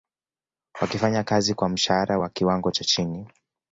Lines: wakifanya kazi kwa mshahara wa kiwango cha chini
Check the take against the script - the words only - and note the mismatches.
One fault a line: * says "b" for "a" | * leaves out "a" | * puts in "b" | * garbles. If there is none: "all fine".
all fine